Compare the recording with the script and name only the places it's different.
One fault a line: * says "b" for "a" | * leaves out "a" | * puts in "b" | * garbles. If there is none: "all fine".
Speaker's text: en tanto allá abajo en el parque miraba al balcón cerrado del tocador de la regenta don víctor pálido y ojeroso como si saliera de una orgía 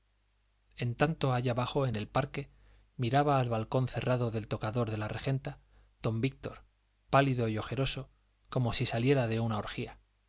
all fine